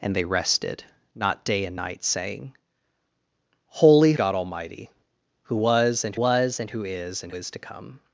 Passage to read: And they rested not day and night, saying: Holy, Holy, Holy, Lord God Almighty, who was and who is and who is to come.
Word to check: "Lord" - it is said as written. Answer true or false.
false